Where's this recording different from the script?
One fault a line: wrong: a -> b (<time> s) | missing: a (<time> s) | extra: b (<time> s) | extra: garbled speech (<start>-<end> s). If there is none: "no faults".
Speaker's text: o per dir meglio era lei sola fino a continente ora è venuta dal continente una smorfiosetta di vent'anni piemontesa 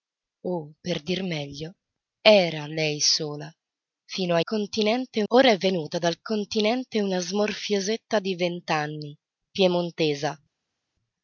no faults